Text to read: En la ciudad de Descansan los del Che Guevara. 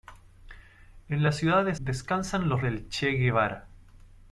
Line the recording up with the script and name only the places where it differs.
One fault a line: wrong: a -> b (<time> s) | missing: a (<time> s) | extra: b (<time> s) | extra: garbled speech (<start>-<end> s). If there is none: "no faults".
no faults